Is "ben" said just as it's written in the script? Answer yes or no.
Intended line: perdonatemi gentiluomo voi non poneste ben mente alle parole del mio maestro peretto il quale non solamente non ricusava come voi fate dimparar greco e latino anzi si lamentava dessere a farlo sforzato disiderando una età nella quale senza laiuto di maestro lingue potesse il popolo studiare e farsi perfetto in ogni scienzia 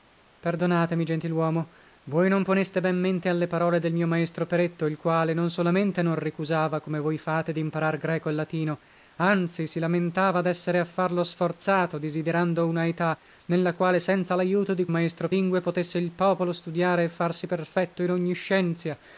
yes